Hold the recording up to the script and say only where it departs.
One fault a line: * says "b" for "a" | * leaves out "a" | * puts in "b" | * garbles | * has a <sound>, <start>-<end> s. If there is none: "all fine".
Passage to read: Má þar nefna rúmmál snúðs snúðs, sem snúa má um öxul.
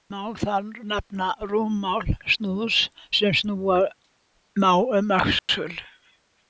* leaves out "snúðs"
* has a dropout, 5.4-5.5 s